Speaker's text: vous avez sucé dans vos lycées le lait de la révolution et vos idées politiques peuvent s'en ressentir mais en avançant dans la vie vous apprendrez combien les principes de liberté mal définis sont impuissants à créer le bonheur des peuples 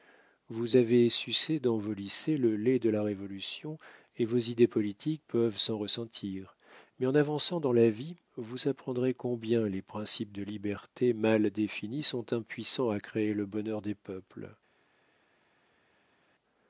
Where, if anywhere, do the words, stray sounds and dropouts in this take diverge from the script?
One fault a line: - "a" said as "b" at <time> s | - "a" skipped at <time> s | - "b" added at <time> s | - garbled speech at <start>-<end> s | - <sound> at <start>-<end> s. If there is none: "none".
none